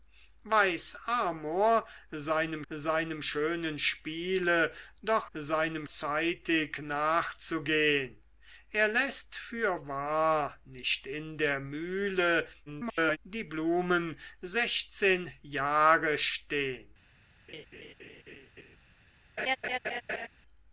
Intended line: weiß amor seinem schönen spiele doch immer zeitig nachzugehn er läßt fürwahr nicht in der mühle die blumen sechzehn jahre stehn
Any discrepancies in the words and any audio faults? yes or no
yes